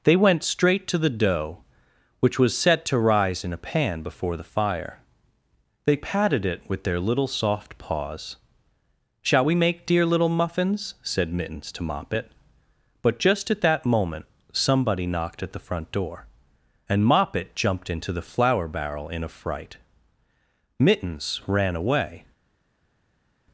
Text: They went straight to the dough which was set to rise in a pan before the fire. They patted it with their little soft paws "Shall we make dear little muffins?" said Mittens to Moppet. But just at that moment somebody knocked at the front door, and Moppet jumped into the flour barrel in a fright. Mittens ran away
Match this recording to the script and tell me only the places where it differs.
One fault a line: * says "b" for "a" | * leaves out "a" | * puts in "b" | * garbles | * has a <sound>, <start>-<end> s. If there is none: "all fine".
all fine